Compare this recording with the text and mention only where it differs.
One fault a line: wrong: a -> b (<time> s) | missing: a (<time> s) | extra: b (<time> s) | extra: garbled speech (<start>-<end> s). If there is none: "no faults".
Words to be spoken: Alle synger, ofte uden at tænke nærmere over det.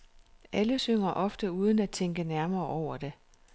no faults